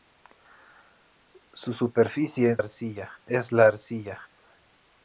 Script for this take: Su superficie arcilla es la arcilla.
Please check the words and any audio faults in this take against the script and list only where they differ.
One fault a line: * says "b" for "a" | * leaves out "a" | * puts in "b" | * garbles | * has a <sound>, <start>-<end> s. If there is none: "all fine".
all fine